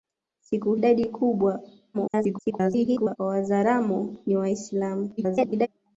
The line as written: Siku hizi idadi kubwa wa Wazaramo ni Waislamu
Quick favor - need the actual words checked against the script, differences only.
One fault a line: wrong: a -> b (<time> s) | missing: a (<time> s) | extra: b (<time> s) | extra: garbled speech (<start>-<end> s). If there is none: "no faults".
missing: hizi (0.8 s)
extra: garbled speech (1.9-3.2 s)
extra: garbled speech (5.2-5.7 s)